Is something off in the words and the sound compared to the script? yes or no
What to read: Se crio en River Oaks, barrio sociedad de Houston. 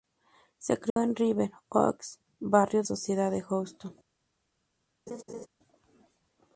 yes